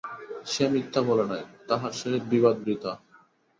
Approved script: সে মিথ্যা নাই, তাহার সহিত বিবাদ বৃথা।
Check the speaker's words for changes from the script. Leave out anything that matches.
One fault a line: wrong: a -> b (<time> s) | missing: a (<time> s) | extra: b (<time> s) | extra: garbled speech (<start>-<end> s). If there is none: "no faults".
extra: বলে (1.1 s)